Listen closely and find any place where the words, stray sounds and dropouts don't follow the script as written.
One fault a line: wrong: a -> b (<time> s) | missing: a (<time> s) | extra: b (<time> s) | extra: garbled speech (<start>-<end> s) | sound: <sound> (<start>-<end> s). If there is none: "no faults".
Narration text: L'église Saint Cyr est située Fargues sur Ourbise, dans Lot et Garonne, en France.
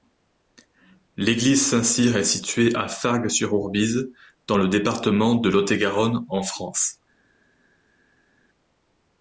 extra: à (2.8 s)
extra: le département de (4.6 s)